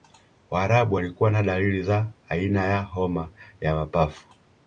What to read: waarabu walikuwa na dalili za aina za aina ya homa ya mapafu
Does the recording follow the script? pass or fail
fail